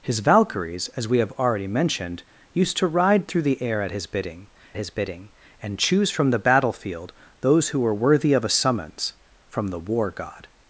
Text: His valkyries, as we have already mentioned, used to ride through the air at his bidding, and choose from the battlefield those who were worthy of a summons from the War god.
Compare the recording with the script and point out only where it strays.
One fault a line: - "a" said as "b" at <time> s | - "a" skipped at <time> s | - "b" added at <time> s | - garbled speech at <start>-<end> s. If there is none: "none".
- "his bidding" added at 4.8 s